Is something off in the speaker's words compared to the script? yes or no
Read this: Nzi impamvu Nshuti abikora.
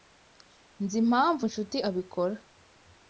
no